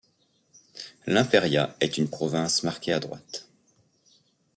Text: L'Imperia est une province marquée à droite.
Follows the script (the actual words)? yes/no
yes